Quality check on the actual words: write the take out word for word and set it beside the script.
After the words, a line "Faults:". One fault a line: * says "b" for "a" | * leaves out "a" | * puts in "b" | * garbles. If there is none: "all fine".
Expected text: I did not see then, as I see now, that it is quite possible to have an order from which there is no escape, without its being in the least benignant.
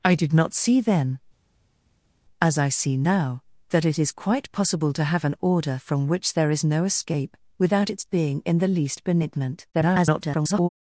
I did not see then, as I see now, that it is quite possible to have an order from which there is no escape, without its being in the least benignant. [garbled]
Faults:
* garbles